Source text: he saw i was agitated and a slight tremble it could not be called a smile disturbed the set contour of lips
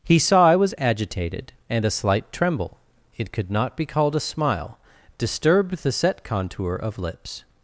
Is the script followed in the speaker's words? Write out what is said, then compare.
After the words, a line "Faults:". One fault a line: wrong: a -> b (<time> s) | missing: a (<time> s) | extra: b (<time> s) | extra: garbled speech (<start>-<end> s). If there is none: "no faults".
he saw i was agitated and a slight tremble it could not be called a smile disturbed the set contour of lips
Faults:
no faults